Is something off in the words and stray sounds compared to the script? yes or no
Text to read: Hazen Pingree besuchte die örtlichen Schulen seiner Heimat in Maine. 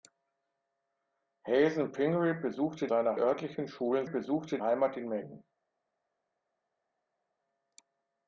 yes